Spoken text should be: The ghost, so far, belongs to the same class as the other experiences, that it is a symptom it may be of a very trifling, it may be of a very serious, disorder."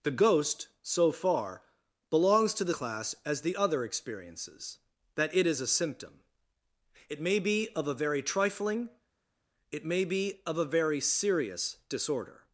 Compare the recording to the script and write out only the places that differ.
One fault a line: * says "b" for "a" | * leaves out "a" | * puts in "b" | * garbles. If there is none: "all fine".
* leaves out "same"